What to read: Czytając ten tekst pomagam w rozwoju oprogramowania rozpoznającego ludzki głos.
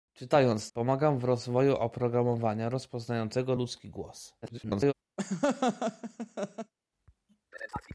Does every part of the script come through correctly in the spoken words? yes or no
no